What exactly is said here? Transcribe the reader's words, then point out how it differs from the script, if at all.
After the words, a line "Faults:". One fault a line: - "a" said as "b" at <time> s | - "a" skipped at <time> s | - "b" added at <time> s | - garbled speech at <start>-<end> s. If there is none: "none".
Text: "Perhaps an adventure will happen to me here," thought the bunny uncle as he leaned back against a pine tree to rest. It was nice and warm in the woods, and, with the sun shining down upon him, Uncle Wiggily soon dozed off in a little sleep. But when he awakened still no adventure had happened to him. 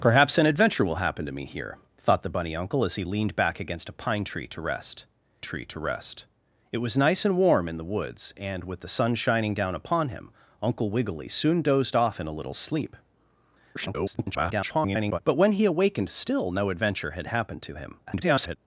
"Perhaps an adventure will happen to me here," thought the bunny uncle as he leaned back against a pine tree to rest tree to rest. It was nice and warm in the woods, and, with the sun shining down upon him, Uncle Wiggily soon dozed off in a little sleep. [garbled] But when he awakened still no adventure had happened to him. [garbled]
Faults:
- "tree to rest" added at 5.4 s
- garbled speech at 13.7-15.2 s
- garbled speech at 18.1-18.6 s